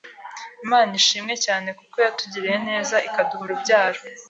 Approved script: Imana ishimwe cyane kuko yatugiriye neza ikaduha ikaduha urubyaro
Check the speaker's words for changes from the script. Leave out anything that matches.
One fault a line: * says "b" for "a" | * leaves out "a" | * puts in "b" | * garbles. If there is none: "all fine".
* leaves out "ikaduha"